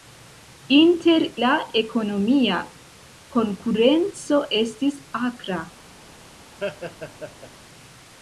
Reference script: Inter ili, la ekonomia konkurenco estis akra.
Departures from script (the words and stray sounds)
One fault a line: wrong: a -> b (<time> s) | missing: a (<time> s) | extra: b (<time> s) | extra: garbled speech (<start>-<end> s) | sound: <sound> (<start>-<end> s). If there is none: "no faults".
missing: ili (1.2 s)
sound: laugh (6.6-7.5 s)